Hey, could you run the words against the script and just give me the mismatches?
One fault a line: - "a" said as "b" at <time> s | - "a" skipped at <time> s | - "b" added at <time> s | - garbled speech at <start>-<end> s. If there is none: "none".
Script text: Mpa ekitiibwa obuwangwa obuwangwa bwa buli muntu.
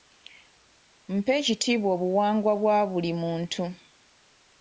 - "obuwangwa" skipped at 2.5 s